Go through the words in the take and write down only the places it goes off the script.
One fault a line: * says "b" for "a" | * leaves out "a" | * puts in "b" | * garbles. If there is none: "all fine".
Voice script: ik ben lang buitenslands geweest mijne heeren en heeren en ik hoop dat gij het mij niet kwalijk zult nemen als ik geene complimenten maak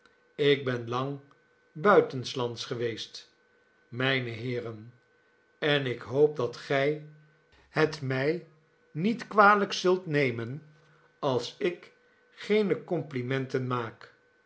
* leaves out "heeren en"